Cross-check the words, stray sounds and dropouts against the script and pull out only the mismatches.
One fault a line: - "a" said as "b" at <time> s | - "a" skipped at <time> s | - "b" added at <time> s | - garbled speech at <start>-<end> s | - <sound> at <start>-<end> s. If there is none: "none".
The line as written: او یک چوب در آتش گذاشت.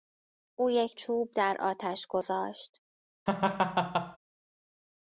- laugh at 3.3-4.2 s